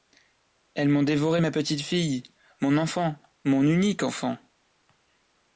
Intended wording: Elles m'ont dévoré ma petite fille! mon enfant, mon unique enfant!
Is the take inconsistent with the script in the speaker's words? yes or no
no